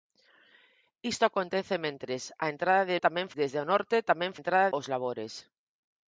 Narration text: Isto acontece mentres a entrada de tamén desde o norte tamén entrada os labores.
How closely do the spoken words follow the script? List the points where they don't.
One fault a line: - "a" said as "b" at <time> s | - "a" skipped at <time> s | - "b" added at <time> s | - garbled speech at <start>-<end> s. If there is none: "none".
none